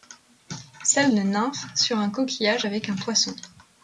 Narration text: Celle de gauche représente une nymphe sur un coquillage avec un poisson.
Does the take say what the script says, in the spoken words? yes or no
no